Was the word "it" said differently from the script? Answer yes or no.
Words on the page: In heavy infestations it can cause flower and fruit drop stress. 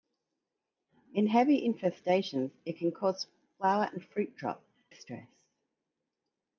no